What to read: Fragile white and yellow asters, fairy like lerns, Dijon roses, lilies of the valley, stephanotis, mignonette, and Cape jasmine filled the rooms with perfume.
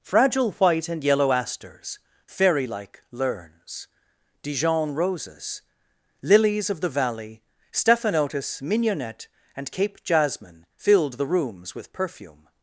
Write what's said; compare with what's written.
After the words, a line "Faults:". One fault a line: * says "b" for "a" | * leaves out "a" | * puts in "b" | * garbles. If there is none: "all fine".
Fragile white and yellow asters, fairy like lerns, Dijon roses, lilies of the valley, stephanotis, mignonette, and Cape jasmine filled the rooms with perfume.
Faults:
all fine